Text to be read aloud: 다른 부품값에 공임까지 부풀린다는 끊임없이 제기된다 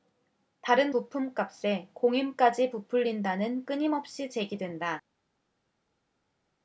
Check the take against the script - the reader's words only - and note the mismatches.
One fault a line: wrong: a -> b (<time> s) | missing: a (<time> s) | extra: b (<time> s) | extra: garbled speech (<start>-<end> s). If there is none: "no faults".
no faults